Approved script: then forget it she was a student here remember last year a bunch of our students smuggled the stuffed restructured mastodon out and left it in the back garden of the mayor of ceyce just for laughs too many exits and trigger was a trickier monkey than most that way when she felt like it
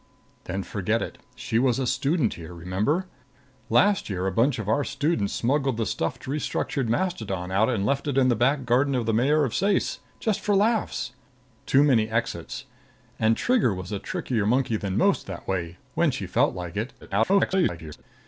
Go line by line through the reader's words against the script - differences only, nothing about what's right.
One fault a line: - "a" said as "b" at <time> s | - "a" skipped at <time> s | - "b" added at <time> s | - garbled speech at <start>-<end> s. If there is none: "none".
- garbled speech at 17.0-18.0 s